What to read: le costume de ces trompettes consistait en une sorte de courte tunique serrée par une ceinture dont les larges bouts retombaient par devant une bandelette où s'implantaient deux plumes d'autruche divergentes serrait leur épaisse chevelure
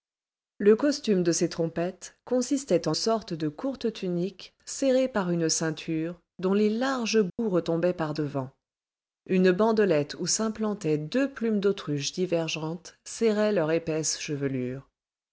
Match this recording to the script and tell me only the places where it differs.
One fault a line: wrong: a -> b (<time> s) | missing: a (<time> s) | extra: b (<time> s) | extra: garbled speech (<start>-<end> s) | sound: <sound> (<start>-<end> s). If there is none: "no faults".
missing: une (3.0 s)
sound: dropout (7.3-7.4 s)